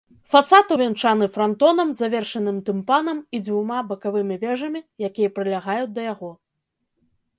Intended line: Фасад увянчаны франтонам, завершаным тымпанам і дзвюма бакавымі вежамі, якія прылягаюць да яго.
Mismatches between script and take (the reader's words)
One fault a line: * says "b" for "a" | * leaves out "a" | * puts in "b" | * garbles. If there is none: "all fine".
all fine